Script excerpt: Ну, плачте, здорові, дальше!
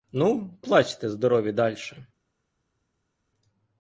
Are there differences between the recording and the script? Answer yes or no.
no